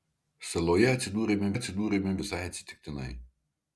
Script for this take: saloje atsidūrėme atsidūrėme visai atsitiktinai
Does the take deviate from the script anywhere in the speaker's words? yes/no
no